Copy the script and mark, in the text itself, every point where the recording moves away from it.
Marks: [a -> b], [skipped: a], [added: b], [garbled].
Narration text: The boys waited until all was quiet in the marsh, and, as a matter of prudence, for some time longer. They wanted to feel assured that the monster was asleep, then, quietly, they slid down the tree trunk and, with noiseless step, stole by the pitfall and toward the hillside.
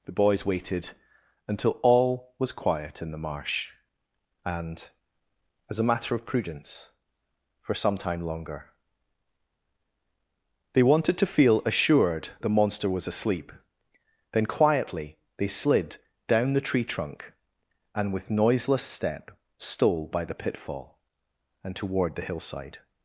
The boys waited until all was quiet in the marsh, and, as a matter of prudence, for some time longer. They wanted to feel assured [skipped: that] the monster was asleep, then, quietly, they slid down the tree trunk and, with noiseless step, stole by the pitfall and toward the hillside.